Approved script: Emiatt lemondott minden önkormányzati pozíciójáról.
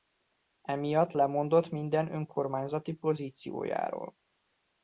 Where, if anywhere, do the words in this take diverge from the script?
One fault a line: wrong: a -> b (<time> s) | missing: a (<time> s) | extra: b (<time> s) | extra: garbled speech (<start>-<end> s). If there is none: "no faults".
no faults